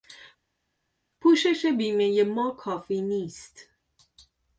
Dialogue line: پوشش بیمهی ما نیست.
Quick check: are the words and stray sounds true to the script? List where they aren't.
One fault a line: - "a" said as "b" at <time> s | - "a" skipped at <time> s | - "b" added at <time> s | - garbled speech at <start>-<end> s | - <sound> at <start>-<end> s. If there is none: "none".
- "کافی" added at 2.5 s